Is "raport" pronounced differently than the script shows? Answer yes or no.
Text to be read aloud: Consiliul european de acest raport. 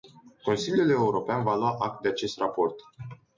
no